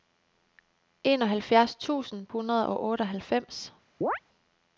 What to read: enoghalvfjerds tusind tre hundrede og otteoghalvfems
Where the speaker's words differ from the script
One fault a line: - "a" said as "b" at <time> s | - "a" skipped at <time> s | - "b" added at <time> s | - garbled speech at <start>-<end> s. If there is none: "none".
- "tre" skipped at 2.3 s